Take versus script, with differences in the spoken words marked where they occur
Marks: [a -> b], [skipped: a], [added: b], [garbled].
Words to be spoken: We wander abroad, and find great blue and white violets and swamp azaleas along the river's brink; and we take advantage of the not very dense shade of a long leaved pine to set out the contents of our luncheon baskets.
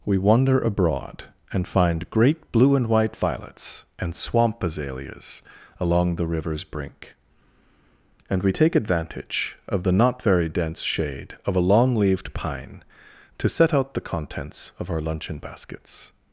We wander abroad, and find great blue and white violets and swamp azaleas along the river's brink; and we take advantage of the not very dense shade of a long leaved pine to set out the contents of our luncheon baskets.